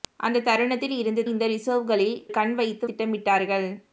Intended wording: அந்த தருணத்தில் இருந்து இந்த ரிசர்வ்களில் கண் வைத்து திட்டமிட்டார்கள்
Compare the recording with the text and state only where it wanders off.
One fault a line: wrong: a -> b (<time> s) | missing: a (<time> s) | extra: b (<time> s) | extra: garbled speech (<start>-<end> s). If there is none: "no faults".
no faults